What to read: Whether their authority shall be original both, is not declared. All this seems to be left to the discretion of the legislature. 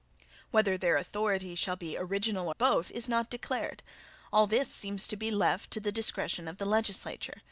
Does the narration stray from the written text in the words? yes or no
no